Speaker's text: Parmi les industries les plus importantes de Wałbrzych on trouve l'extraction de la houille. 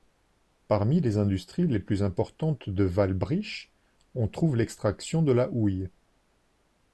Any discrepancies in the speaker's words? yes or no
no